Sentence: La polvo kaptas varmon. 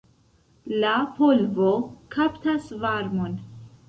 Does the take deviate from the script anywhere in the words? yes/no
no